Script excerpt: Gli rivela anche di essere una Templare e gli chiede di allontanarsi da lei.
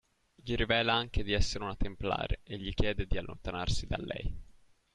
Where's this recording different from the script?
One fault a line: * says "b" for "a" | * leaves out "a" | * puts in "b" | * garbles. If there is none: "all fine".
all fine